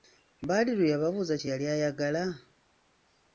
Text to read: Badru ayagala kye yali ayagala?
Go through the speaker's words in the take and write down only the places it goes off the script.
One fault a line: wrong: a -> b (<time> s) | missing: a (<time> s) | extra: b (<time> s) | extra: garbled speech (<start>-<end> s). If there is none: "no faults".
wrong: ayagala -> yababuuza (0.9 s)